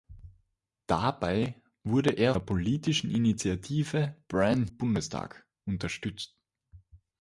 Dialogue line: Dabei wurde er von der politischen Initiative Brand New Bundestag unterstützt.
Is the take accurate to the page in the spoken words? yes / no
no